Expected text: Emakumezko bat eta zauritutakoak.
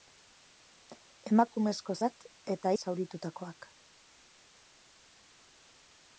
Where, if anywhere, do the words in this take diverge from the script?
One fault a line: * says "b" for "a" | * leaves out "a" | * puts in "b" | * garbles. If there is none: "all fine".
all fine